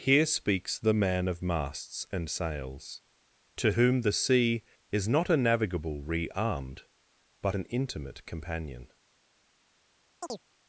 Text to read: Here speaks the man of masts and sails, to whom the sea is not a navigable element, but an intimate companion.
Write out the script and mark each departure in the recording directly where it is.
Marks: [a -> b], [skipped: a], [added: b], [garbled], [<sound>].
Here speaks the man of masts and sails, to whom the sea is not a navigable [element, -> rearmed] but an intimate companion. [chirp]